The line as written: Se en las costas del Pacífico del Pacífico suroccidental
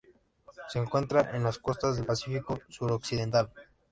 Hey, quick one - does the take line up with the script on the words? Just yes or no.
no